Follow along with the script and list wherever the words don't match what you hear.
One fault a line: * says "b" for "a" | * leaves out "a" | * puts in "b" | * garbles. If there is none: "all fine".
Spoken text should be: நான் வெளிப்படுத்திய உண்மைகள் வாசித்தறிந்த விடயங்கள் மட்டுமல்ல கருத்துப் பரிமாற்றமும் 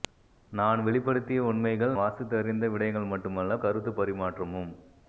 all fine